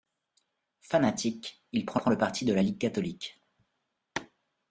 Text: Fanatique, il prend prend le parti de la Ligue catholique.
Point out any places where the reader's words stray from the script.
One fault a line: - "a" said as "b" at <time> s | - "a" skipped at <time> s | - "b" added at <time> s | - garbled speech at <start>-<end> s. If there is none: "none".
none